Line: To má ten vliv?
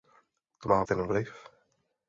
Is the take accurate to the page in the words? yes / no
yes